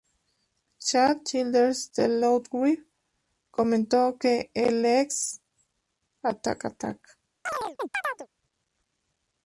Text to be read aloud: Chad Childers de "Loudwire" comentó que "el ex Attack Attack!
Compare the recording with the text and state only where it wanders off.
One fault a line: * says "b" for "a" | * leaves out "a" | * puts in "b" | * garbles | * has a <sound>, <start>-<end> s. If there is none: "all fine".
* has a chirp, 7.5-8.3 s